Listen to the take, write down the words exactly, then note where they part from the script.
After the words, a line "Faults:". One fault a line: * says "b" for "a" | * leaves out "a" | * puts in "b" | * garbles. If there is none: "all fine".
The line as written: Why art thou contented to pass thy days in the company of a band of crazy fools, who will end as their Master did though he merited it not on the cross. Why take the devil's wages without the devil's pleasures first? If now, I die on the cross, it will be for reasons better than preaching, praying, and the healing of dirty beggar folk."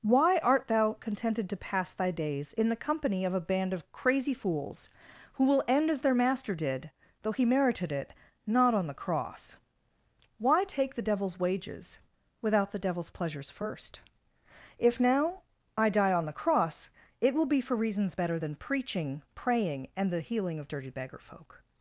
Why art thou contented to pass thy days in the company of a band of crazy fools, who will end as their Master did though he merited it not on the cross. Why take the devil's wages without the devil's pleasures first? If now, I die on the cross, it will be for reasons better than preaching, praying, and the healing of dirty beggar folk."
Faults:
all fine